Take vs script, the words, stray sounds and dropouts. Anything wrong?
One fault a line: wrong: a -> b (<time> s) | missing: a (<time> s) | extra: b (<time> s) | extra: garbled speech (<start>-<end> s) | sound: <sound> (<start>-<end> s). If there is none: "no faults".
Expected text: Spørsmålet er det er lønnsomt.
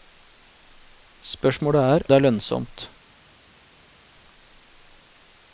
no faults